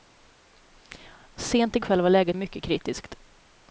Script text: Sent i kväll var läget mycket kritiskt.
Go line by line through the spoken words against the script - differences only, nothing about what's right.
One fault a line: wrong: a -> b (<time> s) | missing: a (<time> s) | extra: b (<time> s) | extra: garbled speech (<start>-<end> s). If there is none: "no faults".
no faults